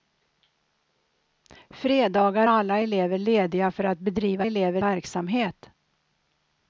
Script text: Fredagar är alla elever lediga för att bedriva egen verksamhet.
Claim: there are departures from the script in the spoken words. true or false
true